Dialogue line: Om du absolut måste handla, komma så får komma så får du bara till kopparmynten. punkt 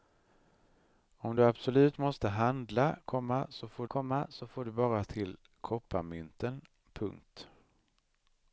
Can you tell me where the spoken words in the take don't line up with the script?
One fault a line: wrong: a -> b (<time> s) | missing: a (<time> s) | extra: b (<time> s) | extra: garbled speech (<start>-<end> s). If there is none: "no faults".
no faults